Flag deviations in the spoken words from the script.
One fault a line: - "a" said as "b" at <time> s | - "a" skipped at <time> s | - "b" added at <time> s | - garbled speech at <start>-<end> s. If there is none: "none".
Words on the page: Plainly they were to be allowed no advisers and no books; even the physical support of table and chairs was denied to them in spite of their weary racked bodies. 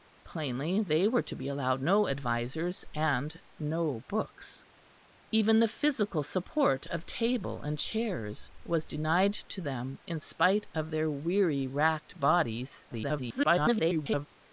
- garbled speech at 12.9-14.3 s